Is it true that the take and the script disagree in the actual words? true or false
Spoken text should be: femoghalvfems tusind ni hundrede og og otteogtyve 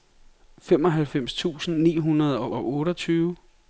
false